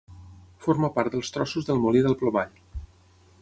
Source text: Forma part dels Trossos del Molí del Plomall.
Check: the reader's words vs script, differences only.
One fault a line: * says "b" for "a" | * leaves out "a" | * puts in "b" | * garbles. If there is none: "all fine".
all fine